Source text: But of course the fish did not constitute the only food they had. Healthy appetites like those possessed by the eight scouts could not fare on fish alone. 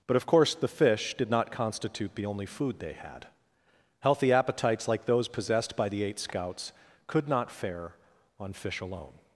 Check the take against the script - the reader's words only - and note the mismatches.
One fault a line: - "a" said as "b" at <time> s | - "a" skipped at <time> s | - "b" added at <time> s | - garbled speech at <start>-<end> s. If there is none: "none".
none